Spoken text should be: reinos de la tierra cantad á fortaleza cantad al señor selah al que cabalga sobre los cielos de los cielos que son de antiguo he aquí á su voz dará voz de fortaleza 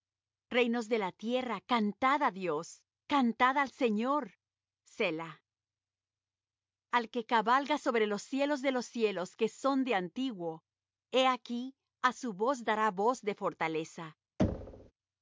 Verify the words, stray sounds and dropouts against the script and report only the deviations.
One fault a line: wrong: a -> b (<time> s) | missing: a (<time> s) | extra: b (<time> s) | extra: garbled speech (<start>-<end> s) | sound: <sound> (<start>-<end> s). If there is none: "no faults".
wrong: fortaleza -> dios (2.3 s)
sound: thud (14.4-14.9 s)